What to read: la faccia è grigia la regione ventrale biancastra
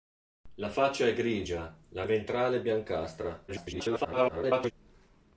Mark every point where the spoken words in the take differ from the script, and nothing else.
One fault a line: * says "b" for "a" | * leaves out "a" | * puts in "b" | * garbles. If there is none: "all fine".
* leaves out "regione"
* garbles